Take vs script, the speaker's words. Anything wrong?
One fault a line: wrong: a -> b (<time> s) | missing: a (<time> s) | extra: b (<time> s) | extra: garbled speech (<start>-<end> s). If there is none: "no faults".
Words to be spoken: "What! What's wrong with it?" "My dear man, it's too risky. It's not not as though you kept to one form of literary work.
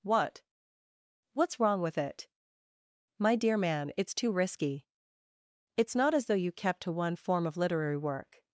missing: not (6.1 s)